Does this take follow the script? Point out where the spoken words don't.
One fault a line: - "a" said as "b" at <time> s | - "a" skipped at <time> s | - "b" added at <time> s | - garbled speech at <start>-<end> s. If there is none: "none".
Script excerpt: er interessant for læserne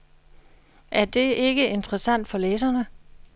- "det ikke" added at 1.1 s